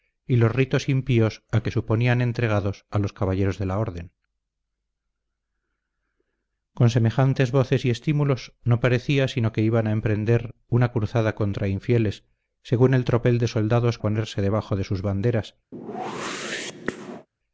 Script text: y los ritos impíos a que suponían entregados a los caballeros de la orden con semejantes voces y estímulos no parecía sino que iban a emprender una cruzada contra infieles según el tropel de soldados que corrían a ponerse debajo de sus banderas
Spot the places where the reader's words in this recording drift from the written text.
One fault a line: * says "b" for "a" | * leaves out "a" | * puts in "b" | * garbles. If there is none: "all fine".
* leaves out "que corrían"